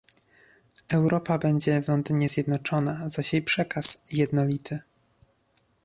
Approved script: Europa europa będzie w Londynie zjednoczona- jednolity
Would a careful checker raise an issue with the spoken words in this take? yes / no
yes